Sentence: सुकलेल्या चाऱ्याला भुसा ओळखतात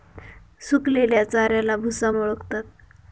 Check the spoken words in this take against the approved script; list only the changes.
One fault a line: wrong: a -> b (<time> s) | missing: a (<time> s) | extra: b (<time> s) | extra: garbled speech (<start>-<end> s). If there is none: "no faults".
no faults